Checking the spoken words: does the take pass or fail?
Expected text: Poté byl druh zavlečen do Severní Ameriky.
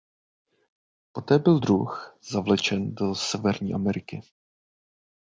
pass